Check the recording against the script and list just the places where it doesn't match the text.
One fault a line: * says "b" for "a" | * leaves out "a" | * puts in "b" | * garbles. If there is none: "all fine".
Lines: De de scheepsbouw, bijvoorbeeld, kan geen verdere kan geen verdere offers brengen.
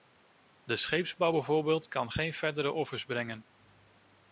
* leaves out "de"
* leaves out "kan geen verdere"